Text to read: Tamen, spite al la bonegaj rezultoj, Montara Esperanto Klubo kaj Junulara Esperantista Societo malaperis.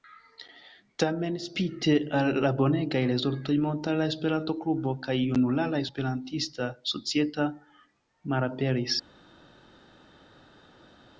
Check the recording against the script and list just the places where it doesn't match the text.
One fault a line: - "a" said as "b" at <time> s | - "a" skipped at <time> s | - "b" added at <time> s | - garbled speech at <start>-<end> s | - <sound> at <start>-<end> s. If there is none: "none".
none